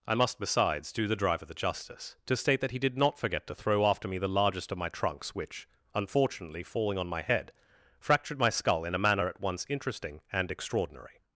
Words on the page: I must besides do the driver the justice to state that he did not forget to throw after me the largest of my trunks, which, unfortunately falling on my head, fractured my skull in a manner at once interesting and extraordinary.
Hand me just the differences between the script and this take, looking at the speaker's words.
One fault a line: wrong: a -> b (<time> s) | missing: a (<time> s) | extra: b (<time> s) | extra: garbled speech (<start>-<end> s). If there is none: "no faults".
no faults